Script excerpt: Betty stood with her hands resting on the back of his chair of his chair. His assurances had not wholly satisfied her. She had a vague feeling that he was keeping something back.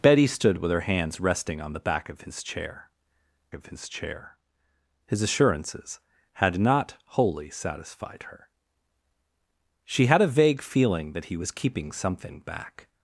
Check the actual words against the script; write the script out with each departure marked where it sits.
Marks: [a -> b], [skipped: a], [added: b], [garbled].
Betty stood with her hands resting on the back of his chair of his chair. His assurances had not wholly satisfied her. She had a vague feeling that he was keeping something back.